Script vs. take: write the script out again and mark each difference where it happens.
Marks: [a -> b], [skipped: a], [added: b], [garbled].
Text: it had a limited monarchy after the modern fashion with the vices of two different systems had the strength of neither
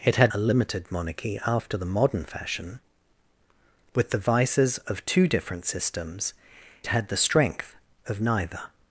it had a limited monarchy after the modern fashion with the vices of two different systems had the strength of neither